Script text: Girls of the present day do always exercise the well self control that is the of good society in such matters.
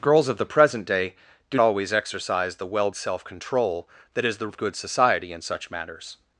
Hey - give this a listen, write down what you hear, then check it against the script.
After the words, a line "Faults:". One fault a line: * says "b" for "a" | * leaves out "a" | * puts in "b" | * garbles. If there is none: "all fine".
Girls of the present day do always exercise the well self control that is the of good society in such matters.
Faults:
all fine